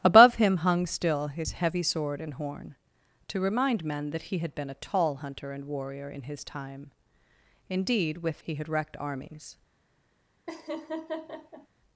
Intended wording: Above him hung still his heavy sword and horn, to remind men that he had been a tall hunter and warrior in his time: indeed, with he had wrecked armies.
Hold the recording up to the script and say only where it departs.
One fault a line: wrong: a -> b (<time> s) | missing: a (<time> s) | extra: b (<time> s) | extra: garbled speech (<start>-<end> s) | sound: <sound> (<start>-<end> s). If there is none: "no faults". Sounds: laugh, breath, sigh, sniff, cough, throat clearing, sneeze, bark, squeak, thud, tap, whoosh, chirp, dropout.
sound: laugh (10.5-11.7 s)